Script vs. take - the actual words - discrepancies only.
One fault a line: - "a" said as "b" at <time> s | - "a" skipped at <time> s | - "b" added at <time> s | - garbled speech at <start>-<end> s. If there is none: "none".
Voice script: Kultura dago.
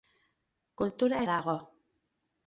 none